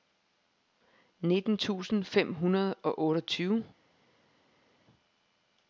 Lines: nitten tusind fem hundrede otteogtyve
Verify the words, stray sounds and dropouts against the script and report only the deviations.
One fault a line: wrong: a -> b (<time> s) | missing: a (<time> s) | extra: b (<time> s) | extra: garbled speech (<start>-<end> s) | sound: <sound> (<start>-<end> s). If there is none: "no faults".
extra: og (2.7 s)